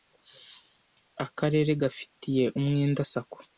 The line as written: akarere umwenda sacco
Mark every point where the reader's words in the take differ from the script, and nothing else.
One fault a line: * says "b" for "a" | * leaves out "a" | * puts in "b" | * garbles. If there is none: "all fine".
* puts in "gafitiye"